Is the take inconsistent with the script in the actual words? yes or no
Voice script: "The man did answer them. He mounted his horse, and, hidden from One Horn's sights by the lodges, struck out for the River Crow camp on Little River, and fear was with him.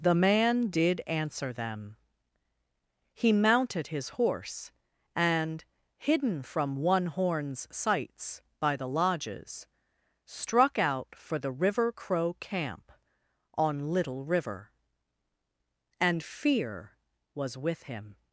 no